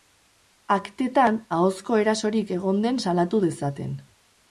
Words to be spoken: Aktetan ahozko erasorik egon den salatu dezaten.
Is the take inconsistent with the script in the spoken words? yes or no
no